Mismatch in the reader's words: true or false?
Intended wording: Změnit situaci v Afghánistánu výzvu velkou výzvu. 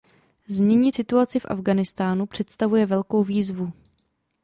true